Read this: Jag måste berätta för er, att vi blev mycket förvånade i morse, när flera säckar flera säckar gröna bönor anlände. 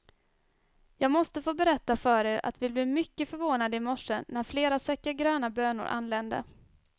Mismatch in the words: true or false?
true